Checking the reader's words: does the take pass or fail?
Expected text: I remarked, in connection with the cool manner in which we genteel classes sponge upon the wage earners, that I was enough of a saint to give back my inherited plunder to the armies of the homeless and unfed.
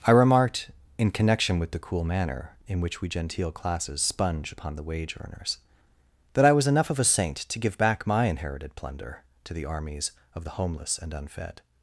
pass